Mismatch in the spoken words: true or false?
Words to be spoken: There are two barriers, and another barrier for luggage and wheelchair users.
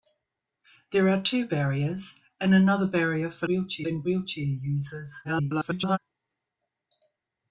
true